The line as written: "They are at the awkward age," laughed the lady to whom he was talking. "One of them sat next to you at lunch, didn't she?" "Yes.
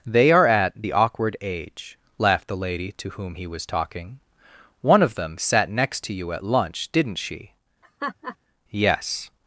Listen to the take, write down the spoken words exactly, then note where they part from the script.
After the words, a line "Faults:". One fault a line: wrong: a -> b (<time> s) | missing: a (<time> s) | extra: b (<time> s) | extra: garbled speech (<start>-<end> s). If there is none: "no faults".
"They are at the awkward age," laughed the lady to whom he was talking. "One of them sat next to you at lunch, didn't she?" "Yes.
Faults:
no faults